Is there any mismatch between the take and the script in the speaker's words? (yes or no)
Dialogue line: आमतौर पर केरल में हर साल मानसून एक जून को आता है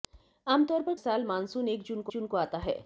yes